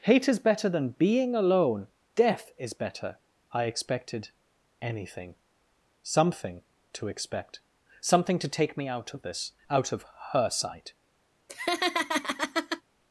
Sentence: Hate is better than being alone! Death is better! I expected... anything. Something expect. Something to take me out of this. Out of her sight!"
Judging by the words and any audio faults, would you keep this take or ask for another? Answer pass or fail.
fail